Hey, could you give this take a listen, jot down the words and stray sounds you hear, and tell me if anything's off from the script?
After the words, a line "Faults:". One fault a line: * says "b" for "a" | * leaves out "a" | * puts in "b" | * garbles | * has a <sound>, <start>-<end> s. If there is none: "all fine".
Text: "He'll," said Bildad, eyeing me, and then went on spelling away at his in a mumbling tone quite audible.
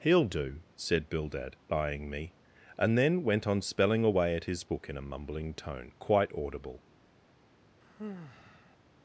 "He'll do," said Bildad, eyeing me, and then went on spelling away at his book in a mumbling tone quite audible.
Faults:
* puts in "do"
* puts in "book"
* has a sigh, 7.8-8.8 s